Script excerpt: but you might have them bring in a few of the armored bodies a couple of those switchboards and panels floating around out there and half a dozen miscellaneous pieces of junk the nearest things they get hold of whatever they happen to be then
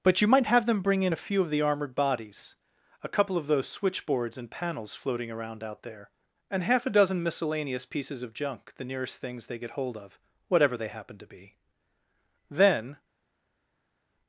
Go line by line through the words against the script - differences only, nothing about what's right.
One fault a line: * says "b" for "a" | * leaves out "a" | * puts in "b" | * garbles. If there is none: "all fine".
all fine